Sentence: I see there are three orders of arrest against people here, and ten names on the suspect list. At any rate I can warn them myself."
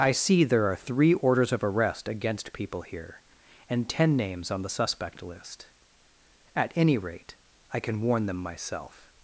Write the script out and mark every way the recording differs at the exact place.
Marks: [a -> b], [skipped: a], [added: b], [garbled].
I see there are three orders of arrest against people here, and ten names on the suspect list. At any rate I can warn them myself."